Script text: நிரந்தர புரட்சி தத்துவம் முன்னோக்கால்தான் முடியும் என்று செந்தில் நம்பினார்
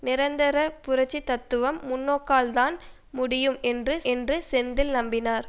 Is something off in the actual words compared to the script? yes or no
yes